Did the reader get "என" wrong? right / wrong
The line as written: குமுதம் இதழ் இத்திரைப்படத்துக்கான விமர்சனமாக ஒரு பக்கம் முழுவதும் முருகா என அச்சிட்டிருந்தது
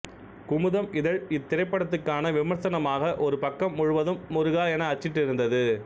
right